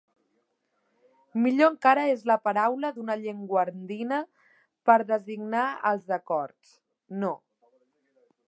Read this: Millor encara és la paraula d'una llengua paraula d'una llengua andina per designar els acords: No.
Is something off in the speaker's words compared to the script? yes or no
yes